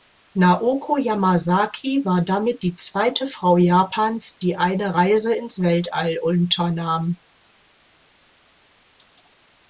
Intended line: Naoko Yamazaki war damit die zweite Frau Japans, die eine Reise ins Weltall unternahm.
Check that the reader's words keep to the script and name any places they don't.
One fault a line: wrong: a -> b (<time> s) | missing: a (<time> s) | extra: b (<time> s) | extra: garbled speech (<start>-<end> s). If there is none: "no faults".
no faults